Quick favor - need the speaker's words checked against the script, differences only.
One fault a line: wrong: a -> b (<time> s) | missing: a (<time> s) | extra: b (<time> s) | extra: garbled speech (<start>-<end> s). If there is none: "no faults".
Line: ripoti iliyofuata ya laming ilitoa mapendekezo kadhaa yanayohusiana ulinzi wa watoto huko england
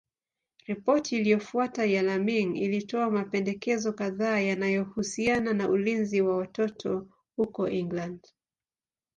extra: na (5.5 s)